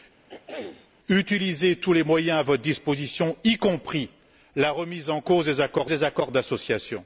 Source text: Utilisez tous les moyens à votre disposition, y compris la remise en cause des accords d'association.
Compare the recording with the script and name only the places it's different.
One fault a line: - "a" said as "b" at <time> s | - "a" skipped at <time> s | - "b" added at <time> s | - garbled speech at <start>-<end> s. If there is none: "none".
- "des accords" added at 5.9 s